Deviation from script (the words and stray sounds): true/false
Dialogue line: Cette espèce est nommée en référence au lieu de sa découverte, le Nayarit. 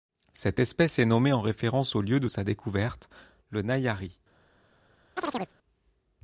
true